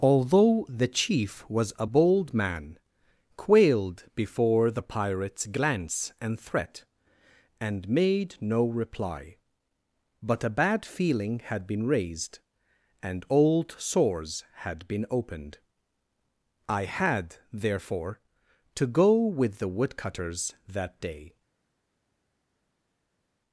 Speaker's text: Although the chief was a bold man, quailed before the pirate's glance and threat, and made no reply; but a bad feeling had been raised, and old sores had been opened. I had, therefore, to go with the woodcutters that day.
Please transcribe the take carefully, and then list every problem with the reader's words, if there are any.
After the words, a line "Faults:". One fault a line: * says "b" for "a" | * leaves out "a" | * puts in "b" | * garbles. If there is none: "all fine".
Although the chief was a bold man, quailed before the pirate's glance and threat, and made no reply; but a bad feeling had been raised, and old sores had been opened. I had, therefore, to go with the woodcutters that day.
Faults:
all fine